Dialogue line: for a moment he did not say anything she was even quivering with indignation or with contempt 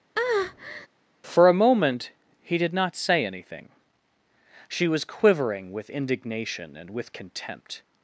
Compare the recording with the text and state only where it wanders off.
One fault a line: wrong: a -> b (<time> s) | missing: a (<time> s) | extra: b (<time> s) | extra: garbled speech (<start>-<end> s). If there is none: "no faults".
missing: even (5.0 s)
wrong: or -> and (6.8 s)